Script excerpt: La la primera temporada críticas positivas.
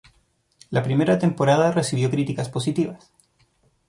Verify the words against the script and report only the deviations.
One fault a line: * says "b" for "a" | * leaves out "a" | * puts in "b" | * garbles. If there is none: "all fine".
* leaves out "la"
* puts in "recibió"